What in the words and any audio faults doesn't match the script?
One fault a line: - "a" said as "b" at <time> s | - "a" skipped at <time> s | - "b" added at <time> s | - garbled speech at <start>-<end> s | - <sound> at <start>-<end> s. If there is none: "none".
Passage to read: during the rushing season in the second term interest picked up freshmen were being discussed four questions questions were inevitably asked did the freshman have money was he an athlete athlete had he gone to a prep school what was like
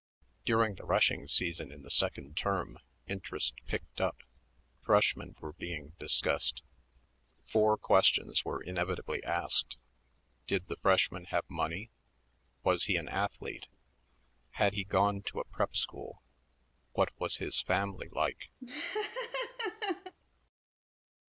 - "questions" skipped at 8.4 s
- "athlete" skipped at 13.7 s
- "his family" added at 17.4 s
- laugh at 18.6-20.1 s